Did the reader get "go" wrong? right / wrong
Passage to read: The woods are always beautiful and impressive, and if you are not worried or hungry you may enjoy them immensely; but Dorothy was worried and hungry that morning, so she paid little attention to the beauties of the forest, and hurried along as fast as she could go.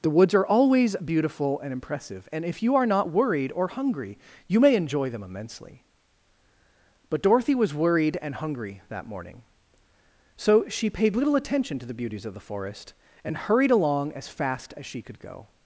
right